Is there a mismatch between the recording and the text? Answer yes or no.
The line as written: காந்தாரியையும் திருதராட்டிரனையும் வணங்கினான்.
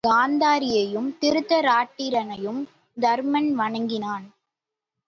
yes